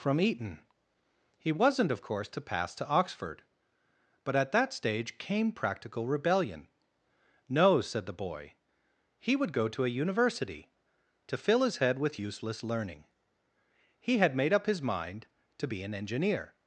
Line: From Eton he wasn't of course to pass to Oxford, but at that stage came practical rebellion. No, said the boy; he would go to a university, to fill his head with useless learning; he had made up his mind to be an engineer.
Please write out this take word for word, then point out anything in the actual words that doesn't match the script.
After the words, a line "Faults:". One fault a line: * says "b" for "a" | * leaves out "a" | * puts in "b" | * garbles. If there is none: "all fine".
From Eton he wasn't of course to pass to Oxford, but at that stage came practical rebellion. No, said the boy; he would go to a university, to fill his head with useless learning; he had made up his mind to be an engineer.
Faults:
all fine